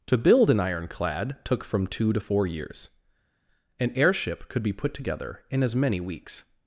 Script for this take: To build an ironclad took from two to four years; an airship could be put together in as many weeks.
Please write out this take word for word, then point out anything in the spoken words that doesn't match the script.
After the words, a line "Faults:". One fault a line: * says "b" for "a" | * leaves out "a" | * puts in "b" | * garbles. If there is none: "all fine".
To build an ironclad took from two to four years; an airship could be put together in as many weeks.
Faults:
all fine